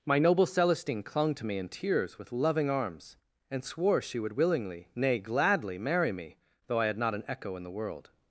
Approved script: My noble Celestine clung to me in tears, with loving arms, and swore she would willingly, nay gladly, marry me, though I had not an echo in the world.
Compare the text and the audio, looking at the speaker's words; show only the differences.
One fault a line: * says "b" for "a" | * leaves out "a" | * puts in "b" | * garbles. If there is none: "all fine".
all fine